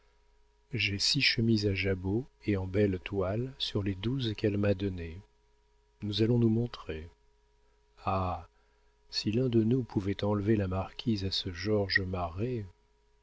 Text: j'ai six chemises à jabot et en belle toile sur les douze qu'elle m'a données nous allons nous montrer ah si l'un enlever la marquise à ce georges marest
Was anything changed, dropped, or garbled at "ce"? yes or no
no